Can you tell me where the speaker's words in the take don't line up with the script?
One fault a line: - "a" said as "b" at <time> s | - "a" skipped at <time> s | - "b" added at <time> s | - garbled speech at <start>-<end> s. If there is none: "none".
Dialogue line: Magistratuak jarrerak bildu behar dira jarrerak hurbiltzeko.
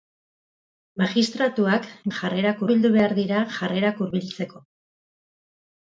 none